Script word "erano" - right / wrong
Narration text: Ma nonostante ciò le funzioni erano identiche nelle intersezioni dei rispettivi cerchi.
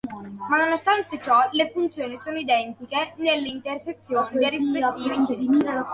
wrong